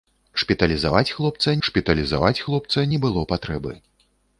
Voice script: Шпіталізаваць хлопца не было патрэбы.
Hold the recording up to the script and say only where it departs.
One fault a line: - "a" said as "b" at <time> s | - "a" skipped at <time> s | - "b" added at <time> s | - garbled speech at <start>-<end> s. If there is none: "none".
- "шпіталізаваць хлопца" added at 1.7 s